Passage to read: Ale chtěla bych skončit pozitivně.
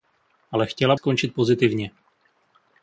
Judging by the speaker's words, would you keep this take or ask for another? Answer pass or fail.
fail